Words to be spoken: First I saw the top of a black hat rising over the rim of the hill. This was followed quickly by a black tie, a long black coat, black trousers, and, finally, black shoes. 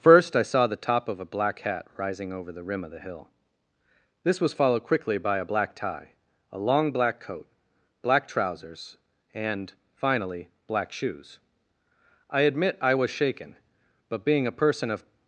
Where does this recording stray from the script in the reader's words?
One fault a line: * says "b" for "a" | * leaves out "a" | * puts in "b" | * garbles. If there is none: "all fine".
* puts in "I admit I was shaken but being a person of"